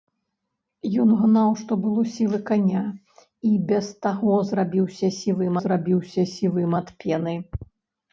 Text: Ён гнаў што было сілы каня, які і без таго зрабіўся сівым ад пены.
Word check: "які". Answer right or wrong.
wrong